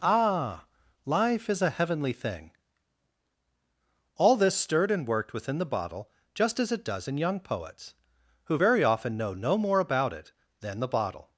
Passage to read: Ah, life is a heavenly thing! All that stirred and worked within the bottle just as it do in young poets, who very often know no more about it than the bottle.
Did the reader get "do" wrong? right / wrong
wrong